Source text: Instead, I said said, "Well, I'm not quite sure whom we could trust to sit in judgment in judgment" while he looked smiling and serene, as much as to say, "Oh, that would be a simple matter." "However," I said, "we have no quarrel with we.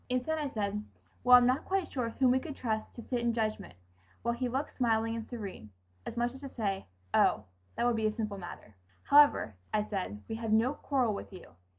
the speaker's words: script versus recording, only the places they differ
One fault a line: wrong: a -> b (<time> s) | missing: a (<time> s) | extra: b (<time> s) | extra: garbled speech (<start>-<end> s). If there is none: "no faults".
missing: said (0.8 s)
missing: in judgment (3.8 s)
wrong: we -> you (11.3 s)